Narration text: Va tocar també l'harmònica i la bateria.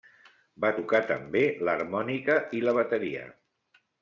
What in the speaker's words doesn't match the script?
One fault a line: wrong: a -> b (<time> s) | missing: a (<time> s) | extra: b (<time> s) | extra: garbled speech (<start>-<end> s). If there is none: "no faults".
no faults